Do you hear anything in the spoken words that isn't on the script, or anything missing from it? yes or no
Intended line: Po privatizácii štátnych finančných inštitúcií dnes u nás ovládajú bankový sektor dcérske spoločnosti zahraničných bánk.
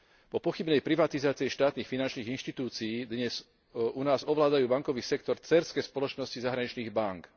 yes